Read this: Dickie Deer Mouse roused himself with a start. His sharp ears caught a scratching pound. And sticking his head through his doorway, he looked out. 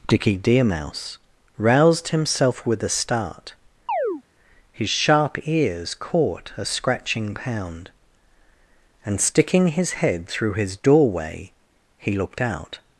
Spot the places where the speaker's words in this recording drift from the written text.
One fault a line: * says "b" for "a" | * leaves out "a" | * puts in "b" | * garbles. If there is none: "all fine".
all fine